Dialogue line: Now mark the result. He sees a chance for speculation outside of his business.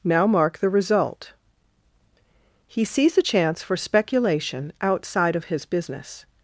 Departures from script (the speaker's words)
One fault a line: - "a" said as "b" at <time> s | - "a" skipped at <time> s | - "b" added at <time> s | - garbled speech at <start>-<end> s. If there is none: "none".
none